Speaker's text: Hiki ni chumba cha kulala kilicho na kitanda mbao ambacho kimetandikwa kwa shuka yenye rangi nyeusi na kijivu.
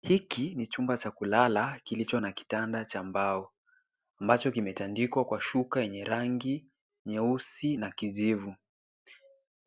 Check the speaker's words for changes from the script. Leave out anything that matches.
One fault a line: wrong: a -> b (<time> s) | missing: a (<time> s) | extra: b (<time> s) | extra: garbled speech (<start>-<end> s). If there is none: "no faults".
extra: cha (2.9 s)